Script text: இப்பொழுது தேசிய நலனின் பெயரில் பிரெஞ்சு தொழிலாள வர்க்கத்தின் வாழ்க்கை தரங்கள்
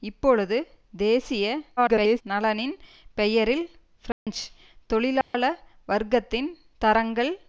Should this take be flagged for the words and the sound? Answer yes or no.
yes